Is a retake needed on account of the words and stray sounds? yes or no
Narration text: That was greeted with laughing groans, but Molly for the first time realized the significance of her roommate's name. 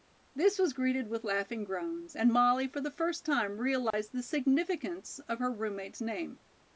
yes